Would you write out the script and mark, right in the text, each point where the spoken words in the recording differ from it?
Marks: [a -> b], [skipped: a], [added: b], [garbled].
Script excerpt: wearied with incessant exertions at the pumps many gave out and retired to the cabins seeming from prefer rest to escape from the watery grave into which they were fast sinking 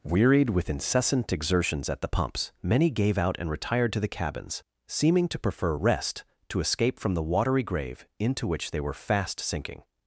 wearied with incessant exertions at the pumps many gave out and retired to the cabins seeming [from -> to] prefer rest to escape from the watery grave into which they were fast sinking